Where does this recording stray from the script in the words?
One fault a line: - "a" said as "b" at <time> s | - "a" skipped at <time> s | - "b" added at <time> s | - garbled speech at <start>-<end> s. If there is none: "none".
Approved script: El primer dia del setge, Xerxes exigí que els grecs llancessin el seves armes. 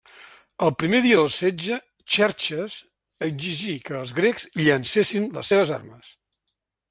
- "el" said as "les" at 5.4 s